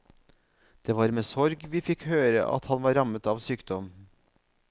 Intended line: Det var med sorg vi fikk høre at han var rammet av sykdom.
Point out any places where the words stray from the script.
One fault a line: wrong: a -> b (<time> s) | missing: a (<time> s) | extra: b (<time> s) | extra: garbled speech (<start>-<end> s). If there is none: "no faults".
no faults